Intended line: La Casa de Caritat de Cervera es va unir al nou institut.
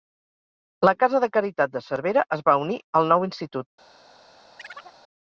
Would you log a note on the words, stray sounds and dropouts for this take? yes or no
yes